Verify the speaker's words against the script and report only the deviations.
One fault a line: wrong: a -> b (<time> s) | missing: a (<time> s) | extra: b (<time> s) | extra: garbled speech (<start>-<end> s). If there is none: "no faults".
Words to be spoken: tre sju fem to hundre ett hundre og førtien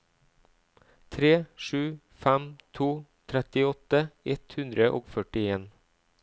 wrong: hundre -> trettiåtte (3.3 s)